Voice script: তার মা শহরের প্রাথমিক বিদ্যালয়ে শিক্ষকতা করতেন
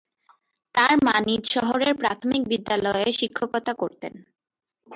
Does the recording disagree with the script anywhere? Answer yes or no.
yes